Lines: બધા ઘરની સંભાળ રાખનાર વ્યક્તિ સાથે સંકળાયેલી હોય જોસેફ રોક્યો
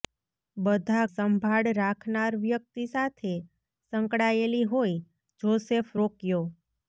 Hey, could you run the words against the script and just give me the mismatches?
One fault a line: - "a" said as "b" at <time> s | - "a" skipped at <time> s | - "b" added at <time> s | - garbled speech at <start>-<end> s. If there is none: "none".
- "ઘરની" skipped at 1.0 s